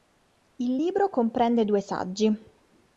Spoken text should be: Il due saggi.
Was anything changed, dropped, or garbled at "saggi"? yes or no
no